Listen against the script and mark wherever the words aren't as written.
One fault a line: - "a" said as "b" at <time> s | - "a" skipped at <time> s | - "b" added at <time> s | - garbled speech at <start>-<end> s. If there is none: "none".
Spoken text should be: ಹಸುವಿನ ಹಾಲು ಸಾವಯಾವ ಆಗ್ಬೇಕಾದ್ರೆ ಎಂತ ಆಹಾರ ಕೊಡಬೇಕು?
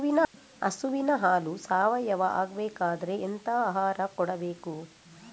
none